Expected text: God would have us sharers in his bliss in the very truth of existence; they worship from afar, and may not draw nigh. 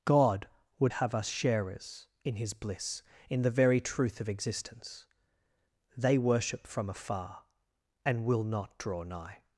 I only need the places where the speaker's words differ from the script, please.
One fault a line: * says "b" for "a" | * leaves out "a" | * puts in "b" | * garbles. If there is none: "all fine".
* says "will" for "may"